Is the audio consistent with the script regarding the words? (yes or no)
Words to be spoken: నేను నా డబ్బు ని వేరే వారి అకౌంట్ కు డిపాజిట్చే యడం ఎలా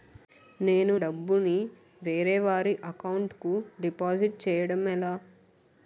no